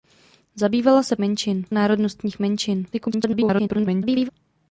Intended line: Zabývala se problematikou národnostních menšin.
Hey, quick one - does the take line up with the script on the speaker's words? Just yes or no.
no